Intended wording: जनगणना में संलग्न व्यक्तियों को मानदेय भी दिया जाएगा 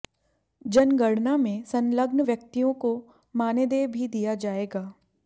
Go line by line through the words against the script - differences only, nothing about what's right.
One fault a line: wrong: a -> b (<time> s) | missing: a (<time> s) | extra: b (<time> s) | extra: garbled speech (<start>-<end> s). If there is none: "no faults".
no faults